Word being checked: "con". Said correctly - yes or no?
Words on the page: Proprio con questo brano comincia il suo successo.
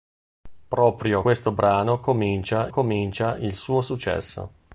no